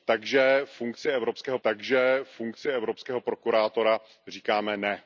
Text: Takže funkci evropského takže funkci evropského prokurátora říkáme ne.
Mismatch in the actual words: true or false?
false